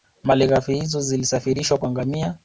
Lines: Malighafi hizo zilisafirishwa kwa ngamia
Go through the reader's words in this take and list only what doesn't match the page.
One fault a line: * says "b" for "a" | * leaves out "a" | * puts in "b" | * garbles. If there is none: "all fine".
all fine